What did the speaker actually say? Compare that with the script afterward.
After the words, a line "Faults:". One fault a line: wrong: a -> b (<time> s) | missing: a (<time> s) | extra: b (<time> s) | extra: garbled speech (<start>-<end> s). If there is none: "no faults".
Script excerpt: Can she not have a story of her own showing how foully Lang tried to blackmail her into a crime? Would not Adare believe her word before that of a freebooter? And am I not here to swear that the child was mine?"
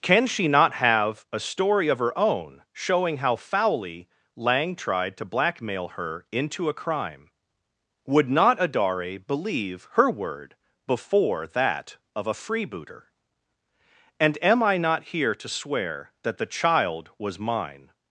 Can she not have a story of her own showing how foully Lang tried to blackmail her into a crime? Would not Adare believe her word before that of a freebooter? And am I not here to swear that the child was mine?"
Faults:
no faults